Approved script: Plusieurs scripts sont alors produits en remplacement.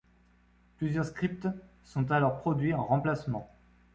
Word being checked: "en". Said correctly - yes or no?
yes